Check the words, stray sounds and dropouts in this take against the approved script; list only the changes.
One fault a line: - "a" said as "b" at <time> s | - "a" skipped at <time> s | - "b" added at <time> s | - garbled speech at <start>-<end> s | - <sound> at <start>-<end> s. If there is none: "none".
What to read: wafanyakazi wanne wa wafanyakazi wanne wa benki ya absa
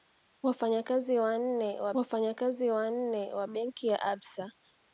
none